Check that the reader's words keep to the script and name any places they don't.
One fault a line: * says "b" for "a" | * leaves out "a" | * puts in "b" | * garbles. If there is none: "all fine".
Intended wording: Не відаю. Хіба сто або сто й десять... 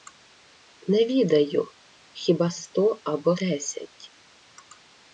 * leaves out "сто й"